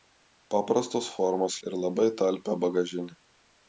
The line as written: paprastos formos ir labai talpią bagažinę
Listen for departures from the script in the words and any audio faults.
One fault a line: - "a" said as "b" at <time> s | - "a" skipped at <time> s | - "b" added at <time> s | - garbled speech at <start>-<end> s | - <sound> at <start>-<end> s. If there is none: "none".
none